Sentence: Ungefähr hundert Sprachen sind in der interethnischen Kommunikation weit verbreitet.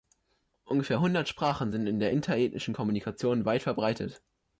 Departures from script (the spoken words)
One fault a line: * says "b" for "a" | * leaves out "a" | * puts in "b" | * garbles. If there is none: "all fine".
all fine